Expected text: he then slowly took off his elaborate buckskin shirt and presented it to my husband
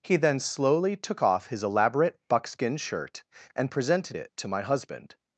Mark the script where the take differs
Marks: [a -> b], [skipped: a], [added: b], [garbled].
he then slowly took off his elaborate buckskin shirt and presented it to my husband